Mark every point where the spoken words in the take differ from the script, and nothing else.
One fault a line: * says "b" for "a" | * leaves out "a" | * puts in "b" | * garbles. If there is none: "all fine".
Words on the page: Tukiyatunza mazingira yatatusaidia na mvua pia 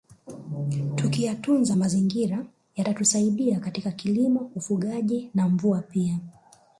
* puts in "katika kilimo ufugaji"